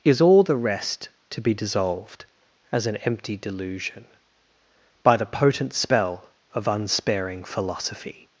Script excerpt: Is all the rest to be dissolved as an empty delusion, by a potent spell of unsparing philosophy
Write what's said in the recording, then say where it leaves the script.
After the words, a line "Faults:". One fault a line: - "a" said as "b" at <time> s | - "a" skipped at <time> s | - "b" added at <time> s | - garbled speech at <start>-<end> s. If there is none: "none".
Is all the rest to be dissolved as an empty delusion, by the potent spell of unsparing philosophy
Faults:
- "a" said as "the" at 5.2 s